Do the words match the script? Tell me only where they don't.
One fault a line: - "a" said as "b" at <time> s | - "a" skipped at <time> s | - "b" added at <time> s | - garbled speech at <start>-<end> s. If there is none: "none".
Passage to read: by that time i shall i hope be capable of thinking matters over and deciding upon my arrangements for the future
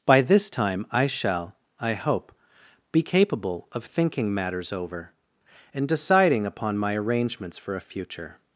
- "that" said as "this" at 0.2 s
- "the" said as "a" at 7.7 s